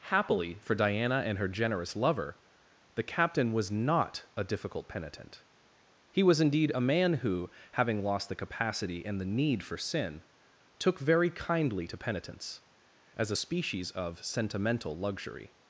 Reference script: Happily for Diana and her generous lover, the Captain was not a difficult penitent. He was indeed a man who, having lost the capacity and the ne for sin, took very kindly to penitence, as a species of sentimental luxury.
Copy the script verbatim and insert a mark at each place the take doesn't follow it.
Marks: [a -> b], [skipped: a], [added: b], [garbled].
Happily for Diana and her generous lover, the Captain was not a difficult penitent. He was indeed a man who, having lost the capacity and the [ne -> need] for sin, took very kindly to penitence, as a species of sentimental luxury.